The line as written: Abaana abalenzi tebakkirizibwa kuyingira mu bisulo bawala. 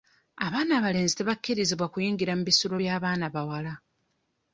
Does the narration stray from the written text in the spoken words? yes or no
yes